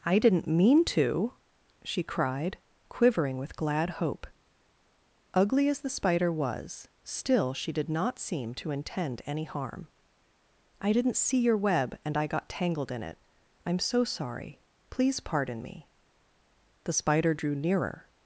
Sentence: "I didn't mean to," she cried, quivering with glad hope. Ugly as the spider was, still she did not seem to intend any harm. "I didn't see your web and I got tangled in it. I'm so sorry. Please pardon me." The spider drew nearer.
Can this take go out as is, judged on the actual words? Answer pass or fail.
pass